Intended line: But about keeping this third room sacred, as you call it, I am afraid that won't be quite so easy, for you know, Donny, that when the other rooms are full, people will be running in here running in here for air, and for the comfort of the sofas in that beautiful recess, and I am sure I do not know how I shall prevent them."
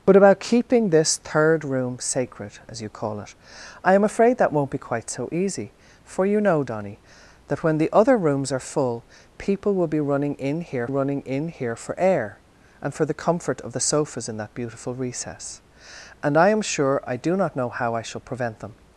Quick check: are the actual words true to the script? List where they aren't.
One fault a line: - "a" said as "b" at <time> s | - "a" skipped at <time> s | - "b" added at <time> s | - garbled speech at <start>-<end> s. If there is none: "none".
none